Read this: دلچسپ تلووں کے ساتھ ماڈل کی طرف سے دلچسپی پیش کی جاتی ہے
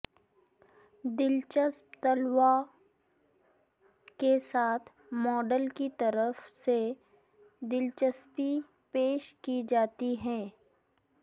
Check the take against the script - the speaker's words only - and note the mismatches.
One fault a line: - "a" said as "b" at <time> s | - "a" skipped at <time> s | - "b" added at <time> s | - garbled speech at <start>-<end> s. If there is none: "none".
none